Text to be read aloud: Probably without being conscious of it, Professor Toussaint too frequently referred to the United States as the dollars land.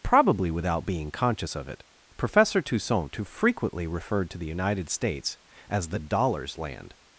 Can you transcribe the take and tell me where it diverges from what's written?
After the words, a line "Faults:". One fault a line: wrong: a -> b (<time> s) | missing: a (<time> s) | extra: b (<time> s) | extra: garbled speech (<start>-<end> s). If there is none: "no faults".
Probably without being conscious of it, Professor Toussaint too frequently referred to the United States as the dollars land.
Faults:
no faults